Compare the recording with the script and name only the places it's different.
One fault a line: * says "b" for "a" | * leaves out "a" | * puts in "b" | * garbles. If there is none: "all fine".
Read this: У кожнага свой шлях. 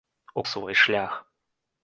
* leaves out "кожнага"